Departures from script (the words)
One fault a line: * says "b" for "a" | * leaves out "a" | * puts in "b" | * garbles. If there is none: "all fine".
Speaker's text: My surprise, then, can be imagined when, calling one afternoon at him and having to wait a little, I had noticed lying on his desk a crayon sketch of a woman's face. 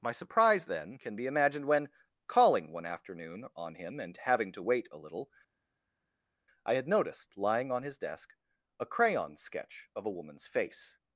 * says "on" for "at"